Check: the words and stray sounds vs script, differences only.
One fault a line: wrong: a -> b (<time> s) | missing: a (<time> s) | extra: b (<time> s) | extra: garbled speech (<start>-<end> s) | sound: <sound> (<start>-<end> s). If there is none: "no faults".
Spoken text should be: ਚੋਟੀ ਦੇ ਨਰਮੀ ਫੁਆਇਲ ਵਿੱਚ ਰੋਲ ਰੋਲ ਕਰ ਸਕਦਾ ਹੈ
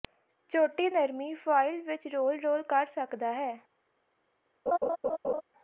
missing: ਦੇ (0.9 s)
sound: laugh (4.7-5.4 s)